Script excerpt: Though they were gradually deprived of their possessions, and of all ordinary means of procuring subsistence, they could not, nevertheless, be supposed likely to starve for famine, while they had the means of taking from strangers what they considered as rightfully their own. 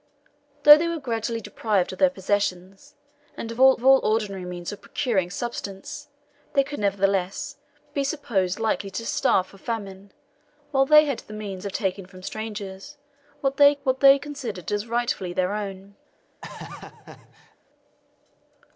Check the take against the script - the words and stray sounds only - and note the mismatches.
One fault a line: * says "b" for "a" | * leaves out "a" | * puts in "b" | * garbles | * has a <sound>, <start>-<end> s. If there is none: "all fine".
* puts in "of all"
* leaves out "not"
* puts in "what they"
* has a laugh, 16.4-17.6 s